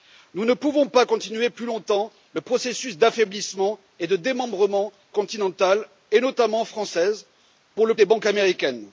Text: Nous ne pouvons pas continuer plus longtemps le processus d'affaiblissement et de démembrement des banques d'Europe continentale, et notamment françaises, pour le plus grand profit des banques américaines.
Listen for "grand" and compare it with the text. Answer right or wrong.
wrong